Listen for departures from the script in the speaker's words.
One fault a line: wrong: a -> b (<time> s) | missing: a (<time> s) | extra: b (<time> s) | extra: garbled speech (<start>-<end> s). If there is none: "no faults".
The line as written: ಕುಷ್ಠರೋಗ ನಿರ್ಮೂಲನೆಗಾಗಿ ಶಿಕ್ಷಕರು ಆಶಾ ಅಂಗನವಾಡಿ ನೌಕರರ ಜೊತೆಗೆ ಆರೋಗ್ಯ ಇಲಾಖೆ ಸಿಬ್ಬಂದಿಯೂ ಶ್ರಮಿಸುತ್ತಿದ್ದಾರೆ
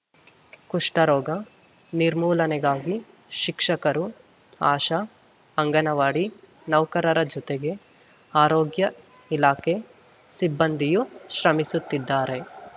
no faults